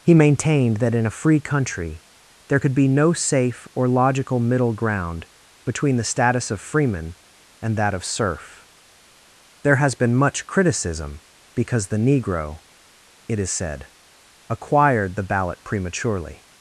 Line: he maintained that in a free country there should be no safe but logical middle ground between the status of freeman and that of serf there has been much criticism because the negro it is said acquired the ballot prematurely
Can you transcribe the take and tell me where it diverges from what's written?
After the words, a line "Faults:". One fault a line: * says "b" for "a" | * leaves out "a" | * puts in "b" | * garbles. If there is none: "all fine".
he maintained that in a free country there could be no safe or logical middle ground between the status of freeman and that of serf there has been much criticism because the negro it is said acquired the ballot prematurely
Faults:
* says "could" for "should"
* says "or" for "but"